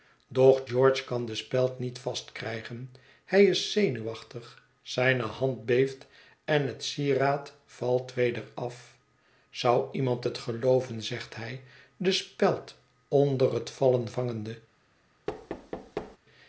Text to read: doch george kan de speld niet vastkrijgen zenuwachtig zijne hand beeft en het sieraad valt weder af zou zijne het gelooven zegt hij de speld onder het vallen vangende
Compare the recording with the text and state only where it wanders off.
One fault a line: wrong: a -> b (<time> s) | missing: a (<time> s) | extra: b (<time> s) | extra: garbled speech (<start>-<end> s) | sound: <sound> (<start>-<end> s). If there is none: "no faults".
extra: hij is (3.2 s)
wrong: zijne -> iemand (9.9 s)
sound: thud (15.3-16.2 s)